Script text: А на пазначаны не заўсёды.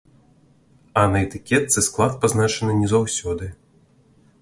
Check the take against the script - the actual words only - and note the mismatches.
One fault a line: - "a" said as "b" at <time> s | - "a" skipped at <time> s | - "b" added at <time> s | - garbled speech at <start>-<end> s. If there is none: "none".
- "этыкетцы склад" added at 1.3 s